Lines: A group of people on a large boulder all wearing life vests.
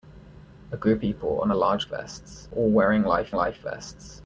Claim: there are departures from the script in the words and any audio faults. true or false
true